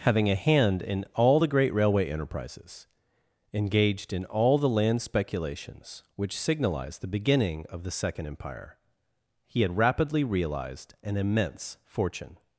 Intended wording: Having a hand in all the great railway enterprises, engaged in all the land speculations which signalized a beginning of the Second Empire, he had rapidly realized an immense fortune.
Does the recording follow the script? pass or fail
fail